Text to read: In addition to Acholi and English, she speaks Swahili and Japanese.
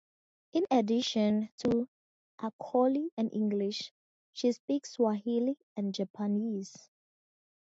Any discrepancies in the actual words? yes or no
no